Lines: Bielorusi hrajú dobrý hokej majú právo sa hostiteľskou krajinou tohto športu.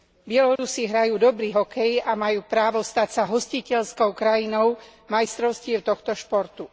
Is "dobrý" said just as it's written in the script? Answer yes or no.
yes